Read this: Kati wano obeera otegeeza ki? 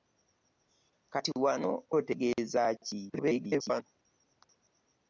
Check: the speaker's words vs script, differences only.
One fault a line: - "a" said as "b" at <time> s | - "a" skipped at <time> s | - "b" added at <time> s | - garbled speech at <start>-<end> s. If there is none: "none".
- "obeera" skipped at 1.7 s
- garbled speech at 3.1-3.8 s